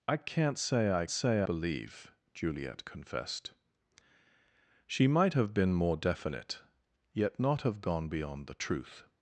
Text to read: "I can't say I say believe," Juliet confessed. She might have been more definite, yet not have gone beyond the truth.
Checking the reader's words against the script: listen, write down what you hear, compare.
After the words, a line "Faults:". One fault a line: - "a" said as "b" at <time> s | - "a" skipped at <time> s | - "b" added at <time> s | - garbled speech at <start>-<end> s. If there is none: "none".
"I can't say I say believe," Juliet confessed. She might have been more definite, yet not have gone beyond the truth.
Faults:
none